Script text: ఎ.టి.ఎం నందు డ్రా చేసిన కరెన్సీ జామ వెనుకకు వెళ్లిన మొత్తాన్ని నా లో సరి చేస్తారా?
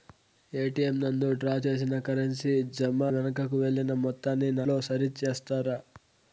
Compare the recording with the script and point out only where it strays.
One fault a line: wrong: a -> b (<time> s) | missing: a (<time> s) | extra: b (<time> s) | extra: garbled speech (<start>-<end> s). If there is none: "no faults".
no faults